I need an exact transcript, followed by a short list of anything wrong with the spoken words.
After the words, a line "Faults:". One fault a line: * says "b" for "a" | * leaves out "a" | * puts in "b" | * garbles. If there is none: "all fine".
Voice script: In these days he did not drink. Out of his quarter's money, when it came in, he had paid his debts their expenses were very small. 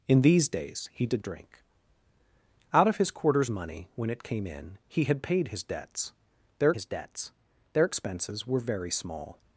In these days he did drink. Out of his quarter's money, when it came in, he had paid his debts their his debts their expenses were very small.
Faults:
* leaves out "not"
* puts in "his debts their"